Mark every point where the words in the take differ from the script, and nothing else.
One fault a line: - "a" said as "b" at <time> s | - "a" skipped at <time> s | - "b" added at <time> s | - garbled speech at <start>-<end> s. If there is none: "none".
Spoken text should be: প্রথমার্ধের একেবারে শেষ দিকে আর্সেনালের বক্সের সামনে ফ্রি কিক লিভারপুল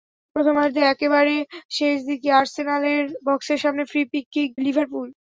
none